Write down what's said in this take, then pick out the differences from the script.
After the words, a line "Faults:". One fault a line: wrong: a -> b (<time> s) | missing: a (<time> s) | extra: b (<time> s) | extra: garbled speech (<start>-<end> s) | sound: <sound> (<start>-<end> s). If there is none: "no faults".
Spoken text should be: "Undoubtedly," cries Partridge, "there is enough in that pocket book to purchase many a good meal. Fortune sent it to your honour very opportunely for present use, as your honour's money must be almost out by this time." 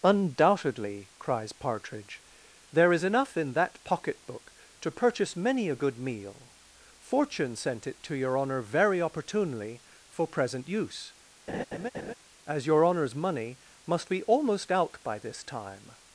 "Undoubtedly," cries Partridge, "there is enough in that pocket book to purchase many a good meal. Fortune sent it to your honour very opportunely for present use, as your honour's money must be almost out by this time."
Faults:
sound: laugh (11.5-12.1 s)